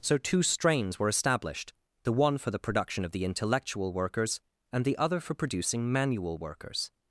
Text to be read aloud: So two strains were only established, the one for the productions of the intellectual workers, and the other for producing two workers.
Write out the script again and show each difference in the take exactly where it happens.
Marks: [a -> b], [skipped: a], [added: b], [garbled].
So two strains were [skipped: only] established, the one for the [productions -> production] of the intellectual workers, and the other for producing [two -> manual] workers.